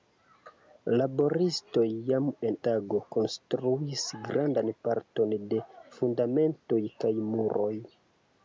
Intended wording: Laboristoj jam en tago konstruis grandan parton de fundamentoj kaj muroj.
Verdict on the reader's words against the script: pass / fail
pass